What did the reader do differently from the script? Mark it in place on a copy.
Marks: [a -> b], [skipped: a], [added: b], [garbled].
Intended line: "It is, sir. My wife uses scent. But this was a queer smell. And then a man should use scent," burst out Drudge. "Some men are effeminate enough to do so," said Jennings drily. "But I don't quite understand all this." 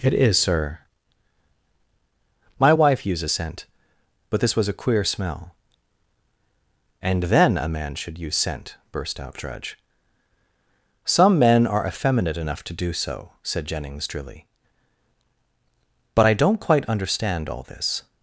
"It is, sir. My wife uses scent. But this was a queer smell. And then a man should use scent," burst out Drudge. "Some men are effeminate enough to do so," said Jennings drily. "But I don't quite understand all this."